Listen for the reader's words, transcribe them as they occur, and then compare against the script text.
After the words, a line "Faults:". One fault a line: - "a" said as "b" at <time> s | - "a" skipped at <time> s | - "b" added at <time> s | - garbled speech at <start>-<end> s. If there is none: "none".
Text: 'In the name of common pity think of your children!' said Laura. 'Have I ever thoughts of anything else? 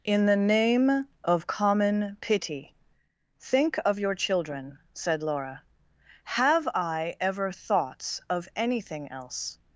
'In the name of common pity think of your children!' said Laura. 'Have I ever thoughts of anything else?
Faults:
none